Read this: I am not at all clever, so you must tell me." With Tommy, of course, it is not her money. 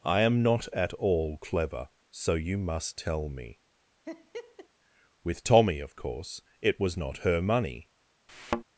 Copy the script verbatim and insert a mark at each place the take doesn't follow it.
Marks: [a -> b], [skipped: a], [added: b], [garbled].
I am not at all clever, so you must tell me." With Tommy, of course, it [is -> was] not her money.